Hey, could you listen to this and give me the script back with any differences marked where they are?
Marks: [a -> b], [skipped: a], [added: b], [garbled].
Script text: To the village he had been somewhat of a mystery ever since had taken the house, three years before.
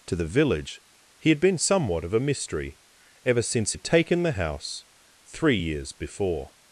To the village he had been somewhat of a mystery ever since had taken the house, three years before.